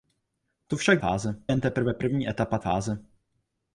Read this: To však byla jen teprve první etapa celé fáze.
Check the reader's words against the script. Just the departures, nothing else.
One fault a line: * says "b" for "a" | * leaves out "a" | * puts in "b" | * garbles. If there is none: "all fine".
* says "fáze" for "byla"
* leaves out "celé"